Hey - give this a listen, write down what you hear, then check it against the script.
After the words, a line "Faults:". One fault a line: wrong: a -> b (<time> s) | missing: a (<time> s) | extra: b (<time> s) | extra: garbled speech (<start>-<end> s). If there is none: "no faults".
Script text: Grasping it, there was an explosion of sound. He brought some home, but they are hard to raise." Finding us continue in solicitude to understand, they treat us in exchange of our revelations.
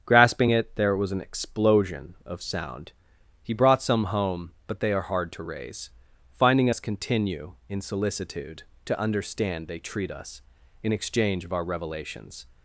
Grasping it, there was an explosion of sound. He brought some home, but they are hard to raise." Finding us continue in solicitude to understand, they treat us in exchange of our revelations.
Faults:
no faults